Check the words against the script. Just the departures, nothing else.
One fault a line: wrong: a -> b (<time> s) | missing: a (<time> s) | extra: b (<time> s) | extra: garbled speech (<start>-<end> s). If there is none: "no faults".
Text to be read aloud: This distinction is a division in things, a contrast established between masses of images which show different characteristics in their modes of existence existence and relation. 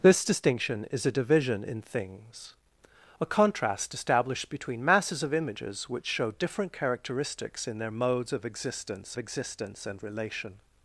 no faults